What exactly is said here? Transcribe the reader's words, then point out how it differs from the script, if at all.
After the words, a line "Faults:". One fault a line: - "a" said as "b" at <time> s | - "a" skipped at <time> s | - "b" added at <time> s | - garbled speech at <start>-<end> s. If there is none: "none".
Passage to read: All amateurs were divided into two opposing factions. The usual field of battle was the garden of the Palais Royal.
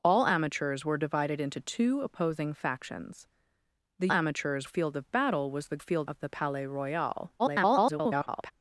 All amateurs were divided into two opposing factions. The amateurs field of battle was the field of the Palais Royal. [garbled]
Faults:
- "usual" said as "amateurs" at 4.1 s
- "garden" said as "field" at 5.8 s
- garbled speech at 7.4-8.5 s